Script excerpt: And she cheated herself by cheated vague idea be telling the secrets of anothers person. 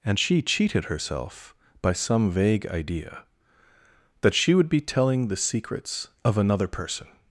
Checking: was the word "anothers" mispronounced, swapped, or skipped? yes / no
yes